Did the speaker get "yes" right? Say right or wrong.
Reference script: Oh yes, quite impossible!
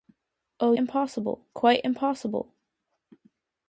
wrong